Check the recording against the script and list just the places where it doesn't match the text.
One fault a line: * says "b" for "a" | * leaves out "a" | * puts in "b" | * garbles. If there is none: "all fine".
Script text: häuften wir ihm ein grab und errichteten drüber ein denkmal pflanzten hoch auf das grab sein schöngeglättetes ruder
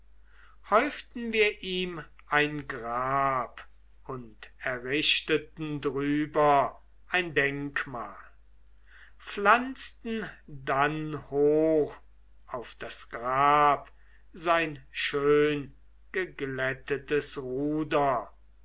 * puts in "dann"